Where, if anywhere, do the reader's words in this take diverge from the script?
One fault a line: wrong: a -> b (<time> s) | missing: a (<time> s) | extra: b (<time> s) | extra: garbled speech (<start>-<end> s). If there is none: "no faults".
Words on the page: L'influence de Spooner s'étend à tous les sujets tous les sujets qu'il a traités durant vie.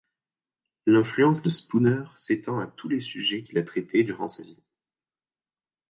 missing: tous les sujets (3.4 s)
extra: sa (4.3 s)